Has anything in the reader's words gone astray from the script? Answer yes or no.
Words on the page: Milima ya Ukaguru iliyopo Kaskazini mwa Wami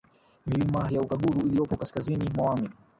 no